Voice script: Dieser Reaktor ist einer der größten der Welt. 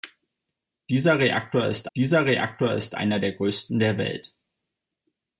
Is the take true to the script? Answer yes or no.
no